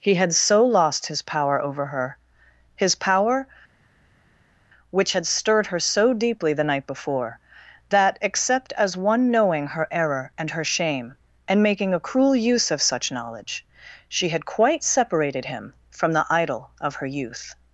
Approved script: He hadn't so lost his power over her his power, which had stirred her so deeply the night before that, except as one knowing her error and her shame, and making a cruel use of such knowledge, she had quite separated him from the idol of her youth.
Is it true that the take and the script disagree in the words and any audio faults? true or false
true